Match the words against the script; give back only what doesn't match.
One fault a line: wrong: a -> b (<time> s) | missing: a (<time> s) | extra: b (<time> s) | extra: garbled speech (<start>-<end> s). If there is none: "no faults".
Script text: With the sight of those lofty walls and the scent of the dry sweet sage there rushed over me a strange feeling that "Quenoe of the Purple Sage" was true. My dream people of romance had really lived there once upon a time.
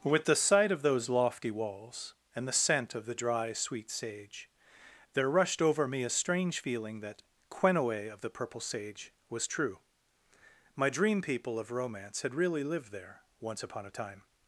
no faults